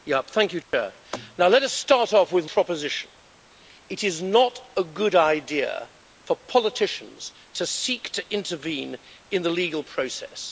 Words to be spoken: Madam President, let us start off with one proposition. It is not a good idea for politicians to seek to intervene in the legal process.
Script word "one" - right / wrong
wrong